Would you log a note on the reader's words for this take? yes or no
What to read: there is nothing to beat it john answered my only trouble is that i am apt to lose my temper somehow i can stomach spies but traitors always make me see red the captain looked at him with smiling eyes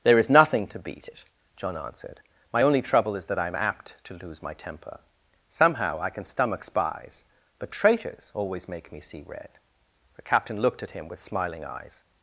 no